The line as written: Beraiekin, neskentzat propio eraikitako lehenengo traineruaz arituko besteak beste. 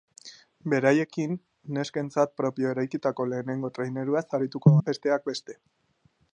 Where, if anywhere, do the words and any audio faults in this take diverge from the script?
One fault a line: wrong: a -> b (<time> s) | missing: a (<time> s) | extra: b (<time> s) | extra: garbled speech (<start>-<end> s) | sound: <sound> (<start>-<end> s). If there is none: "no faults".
no faults